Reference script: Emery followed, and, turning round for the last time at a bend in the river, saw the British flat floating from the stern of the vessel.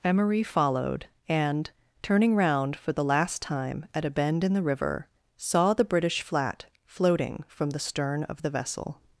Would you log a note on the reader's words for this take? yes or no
no